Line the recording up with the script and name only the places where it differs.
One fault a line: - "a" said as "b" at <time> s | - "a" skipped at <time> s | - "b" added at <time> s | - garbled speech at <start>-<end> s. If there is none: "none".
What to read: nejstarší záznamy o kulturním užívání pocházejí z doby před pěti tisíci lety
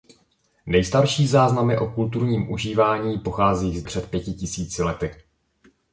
- "doby" skipped at 3.8 s